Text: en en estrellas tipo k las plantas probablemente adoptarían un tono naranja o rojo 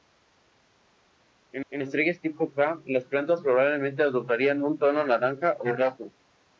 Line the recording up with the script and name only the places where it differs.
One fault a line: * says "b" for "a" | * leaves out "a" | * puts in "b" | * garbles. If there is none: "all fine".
all fine